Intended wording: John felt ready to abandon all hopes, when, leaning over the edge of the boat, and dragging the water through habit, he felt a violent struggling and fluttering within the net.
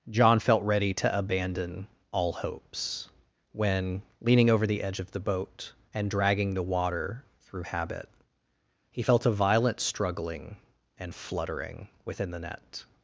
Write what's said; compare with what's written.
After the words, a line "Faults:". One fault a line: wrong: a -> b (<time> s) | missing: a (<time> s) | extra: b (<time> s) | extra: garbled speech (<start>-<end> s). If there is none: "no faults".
John felt ready to abandon all hopes, when, leaning over the edge of the boat, and dragging the water through habit, he felt a violent struggling and fluttering within the net.
Faults:
no faults